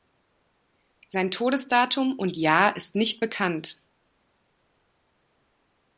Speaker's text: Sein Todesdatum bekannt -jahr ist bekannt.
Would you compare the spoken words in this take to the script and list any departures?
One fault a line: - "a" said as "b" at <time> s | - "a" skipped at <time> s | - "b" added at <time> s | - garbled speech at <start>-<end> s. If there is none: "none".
- "bekannt" said as "und" at 2.2 s
- "nicht" added at 3.0 s